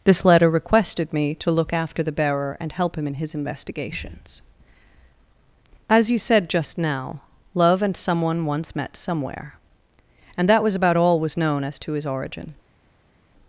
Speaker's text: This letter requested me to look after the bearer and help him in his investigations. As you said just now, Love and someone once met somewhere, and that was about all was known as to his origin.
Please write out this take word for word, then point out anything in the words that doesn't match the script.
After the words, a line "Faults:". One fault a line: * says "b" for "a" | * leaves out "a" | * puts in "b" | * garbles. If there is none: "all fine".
This letter requested me to look after the bearer and help him in his investigations. As you said just now, Love and someone once met somewhere, and that was about all was known as to his origin.
Faults:
all fine